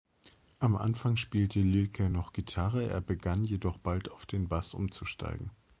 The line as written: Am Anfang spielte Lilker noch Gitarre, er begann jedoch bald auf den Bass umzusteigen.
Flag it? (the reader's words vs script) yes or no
no